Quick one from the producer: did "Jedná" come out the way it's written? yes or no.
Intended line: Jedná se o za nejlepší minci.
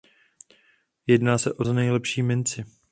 yes